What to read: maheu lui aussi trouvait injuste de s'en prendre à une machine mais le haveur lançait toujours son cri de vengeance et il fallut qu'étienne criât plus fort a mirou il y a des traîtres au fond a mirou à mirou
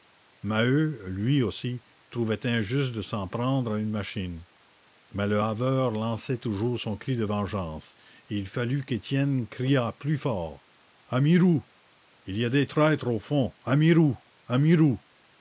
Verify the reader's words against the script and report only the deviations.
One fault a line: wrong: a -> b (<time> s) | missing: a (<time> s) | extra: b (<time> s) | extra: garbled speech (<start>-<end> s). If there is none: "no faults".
no faults